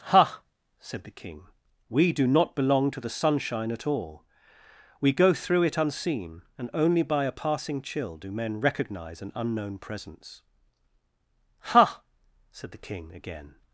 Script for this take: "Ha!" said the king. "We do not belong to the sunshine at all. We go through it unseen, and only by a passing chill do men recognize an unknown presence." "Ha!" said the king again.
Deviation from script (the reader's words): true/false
false